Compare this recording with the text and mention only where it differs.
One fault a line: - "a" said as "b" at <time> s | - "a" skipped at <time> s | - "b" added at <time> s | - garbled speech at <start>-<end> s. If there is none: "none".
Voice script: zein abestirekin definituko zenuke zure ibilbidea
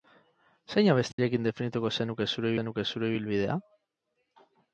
- "zenuke zure" added at 2.6 s